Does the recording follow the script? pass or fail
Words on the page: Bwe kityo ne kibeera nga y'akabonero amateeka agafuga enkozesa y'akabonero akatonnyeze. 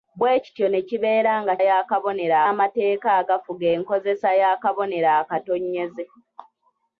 pass